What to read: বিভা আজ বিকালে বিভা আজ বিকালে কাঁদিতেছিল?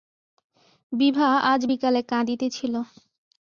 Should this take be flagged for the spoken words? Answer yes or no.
yes